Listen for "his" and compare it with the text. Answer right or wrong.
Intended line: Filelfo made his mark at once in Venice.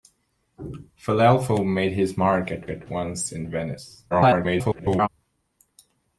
right